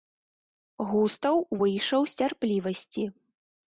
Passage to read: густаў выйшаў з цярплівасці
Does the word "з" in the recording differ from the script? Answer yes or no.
no